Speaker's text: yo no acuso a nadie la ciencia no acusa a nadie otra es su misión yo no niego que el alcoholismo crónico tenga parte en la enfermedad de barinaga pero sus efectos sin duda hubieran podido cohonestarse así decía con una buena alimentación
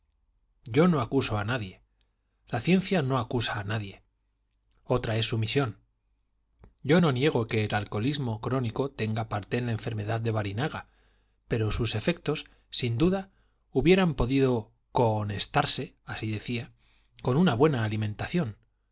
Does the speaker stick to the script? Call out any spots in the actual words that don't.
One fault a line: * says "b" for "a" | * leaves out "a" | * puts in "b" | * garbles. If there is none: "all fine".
all fine